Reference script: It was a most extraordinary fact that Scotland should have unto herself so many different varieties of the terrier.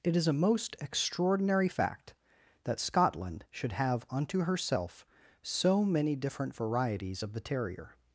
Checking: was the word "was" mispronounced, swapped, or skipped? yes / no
yes